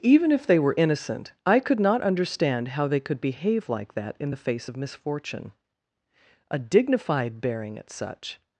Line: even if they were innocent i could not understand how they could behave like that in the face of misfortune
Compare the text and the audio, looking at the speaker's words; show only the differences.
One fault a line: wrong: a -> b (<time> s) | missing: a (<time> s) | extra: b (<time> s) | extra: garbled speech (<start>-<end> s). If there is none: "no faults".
extra: a dignified bearing at such (6.5 s)